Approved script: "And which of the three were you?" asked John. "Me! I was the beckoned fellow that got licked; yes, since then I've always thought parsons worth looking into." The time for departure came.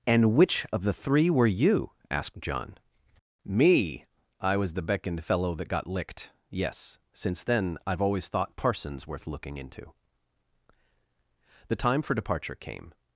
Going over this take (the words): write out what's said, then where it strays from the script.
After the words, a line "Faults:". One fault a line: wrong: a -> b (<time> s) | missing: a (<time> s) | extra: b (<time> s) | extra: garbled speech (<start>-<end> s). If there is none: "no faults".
"And which of the three were you?" asked John. "Me! I was the beckoned fellow that got licked; yes, since then I've always thought parsons worth looking into." The time for departure came.
Faults:
no faults